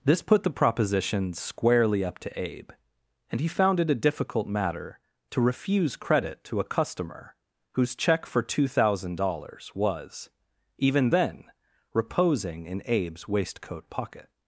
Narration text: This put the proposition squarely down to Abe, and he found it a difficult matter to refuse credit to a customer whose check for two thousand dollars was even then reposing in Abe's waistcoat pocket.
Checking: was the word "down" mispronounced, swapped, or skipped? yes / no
yes